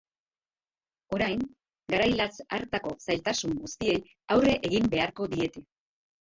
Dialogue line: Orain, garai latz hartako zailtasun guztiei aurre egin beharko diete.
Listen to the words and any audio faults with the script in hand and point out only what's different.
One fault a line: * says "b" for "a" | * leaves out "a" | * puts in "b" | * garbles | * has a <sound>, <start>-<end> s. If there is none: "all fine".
all fine